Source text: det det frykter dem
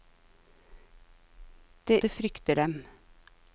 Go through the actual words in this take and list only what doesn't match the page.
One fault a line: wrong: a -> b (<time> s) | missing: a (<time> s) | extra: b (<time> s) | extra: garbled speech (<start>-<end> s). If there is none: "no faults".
no faults